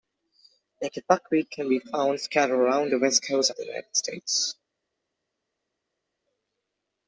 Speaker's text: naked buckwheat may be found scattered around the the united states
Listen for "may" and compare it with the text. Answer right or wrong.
wrong